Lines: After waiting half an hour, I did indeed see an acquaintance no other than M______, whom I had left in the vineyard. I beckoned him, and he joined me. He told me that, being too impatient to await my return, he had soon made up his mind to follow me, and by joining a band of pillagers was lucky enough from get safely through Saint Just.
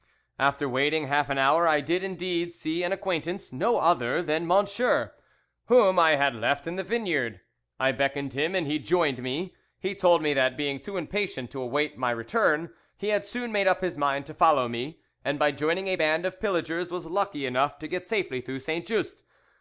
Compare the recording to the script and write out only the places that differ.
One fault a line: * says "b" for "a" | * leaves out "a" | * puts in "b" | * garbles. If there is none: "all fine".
* says "to" for "from"